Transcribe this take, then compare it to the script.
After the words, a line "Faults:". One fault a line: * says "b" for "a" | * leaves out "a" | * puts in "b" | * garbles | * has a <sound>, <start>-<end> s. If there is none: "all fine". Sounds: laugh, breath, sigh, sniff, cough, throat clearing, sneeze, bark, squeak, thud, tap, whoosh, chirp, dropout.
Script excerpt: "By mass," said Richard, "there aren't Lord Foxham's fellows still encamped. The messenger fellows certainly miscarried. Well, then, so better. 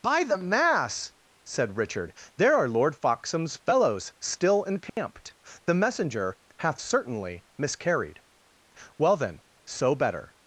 "By the mass," said Richard, "there are Lord Foxham's fellows still encamped. The messenger hath certainly miscarried. Well, then, so better.
Faults:
* puts in "the"
* says "are" for "aren't"
* has a dropout, 4.9-5.0 s
* says "hath" for "fellows"